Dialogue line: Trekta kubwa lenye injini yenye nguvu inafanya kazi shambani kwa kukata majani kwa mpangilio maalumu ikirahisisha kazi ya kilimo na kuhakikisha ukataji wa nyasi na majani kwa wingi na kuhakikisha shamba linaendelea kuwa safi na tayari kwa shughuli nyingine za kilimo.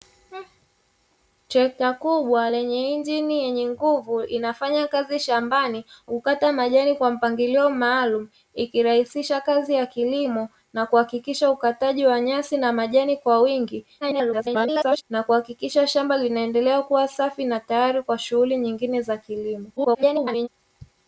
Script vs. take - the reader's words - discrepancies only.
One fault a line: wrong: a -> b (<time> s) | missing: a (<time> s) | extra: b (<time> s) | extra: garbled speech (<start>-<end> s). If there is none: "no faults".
missing: kwa (5.9 s)
extra: garbled speech (14.0-15.0 s)
extra: garbled speech (19.8-20.5 s)